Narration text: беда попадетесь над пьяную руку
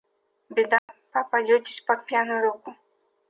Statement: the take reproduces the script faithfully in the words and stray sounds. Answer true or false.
false